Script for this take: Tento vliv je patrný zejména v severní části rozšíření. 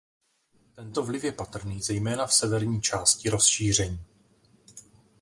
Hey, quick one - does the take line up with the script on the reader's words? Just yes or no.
yes